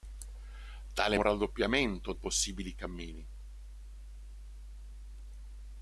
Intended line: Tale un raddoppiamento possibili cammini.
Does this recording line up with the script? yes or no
yes